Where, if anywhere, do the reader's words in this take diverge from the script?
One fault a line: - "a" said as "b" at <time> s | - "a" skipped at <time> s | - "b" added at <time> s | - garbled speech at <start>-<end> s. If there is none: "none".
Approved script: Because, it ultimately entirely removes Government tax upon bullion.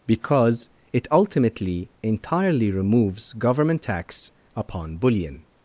none